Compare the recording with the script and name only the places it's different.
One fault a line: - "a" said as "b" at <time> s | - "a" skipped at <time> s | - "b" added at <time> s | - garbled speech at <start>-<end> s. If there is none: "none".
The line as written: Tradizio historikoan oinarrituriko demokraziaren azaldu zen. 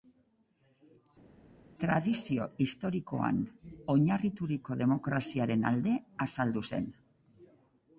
- "alde" added at 5.7 s